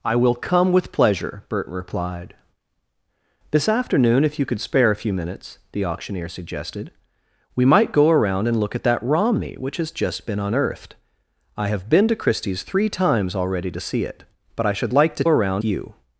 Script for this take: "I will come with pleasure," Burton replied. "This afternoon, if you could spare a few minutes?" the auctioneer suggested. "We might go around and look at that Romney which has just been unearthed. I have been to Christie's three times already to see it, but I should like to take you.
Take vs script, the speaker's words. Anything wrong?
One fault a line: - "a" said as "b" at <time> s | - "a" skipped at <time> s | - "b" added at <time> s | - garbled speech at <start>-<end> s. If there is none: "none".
- "take" said as "around" at 15.3 s